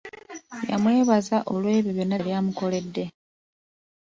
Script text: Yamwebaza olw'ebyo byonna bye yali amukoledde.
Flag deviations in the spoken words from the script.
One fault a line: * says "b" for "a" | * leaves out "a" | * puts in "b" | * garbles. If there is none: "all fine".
* leaves out "bye"